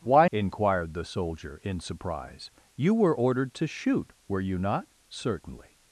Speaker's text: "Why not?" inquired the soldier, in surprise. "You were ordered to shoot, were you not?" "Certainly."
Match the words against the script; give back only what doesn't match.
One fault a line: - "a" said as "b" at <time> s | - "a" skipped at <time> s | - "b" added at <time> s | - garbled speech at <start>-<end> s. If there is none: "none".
- "not" skipped at 0.3 s